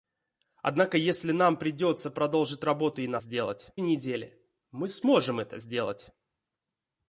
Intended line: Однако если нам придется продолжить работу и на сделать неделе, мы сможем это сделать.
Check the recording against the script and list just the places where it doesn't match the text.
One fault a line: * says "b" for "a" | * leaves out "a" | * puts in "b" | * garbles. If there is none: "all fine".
all fine